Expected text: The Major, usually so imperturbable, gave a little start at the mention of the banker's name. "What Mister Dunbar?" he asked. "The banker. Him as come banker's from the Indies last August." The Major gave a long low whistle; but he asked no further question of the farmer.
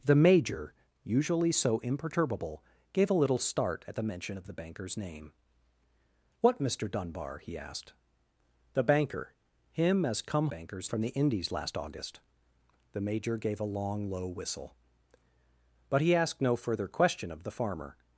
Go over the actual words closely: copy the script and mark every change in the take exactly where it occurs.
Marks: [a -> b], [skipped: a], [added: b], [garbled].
The Major, usually so imperturbable, gave a little start at the mention of the banker's name. "What Mister Dunbar?" he asked. "The banker. Him as come banker's from the Indies last August." The Major gave a long low whistle; but he asked no further question of the farmer.